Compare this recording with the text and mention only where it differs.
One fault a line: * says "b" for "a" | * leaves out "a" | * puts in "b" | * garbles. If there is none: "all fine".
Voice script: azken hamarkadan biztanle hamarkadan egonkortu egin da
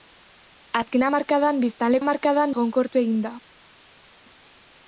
all fine